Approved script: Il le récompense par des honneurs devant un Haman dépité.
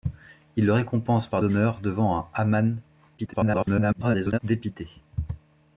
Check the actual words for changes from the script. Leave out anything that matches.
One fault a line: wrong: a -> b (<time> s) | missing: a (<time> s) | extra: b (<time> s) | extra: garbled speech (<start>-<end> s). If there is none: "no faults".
missing: des (1.4 s)
extra: garbled speech (3.2-4.4 s)